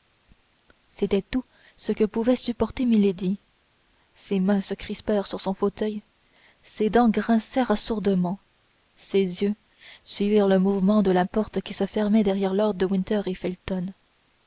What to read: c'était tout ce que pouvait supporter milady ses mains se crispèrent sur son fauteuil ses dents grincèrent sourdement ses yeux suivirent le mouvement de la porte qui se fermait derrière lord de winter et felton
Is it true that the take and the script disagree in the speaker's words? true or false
false